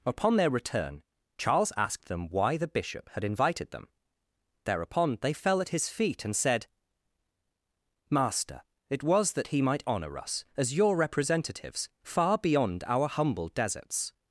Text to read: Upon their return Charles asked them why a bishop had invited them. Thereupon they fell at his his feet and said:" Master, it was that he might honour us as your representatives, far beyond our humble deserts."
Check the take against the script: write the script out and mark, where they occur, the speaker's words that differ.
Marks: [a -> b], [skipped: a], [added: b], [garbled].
Upon their return Charles asked them why [a -> the] bishop had invited them. Thereupon they fell at his [skipped: his] feet and said:" Master, it was that he might honour us as your representatives, far beyond our humble deserts."